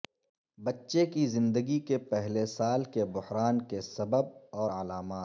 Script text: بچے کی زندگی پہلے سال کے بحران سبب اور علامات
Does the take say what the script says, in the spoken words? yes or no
no